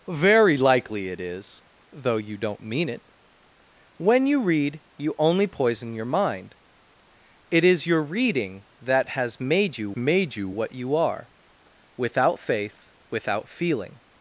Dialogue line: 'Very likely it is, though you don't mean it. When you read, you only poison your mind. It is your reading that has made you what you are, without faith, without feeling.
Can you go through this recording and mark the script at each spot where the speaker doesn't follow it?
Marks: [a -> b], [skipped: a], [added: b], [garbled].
'Very likely it is, though you don't mean it. When you read, you only poison your mind. It is your reading that has made you [added: made you] what you are, without faith, without feeling.